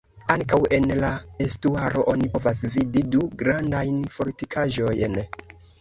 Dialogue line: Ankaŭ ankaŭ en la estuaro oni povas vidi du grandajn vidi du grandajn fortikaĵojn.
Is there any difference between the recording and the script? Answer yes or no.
yes